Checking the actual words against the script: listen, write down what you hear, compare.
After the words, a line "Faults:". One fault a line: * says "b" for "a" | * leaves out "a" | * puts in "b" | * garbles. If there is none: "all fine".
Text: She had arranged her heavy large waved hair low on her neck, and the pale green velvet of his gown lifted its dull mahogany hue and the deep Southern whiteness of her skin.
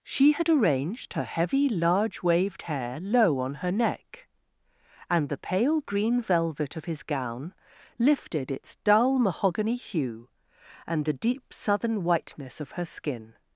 She had arranged her heavy large waved hair low on her neck, and the pale green velvet of his gown lifted its dull mahogany hue and the deep Southern whiteness of her skin.
Faults:
all fine